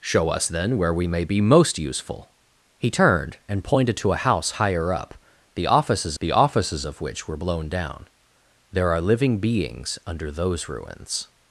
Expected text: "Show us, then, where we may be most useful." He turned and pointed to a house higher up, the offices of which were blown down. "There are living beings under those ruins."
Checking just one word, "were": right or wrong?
right